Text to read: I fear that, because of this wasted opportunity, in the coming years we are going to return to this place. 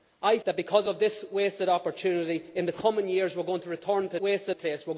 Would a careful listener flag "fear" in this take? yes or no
yes